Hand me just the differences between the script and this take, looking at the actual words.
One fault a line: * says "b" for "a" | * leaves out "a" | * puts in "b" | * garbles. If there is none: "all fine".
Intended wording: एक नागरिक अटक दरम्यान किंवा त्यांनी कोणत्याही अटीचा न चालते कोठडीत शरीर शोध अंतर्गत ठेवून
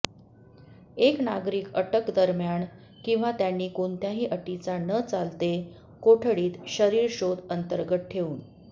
all fine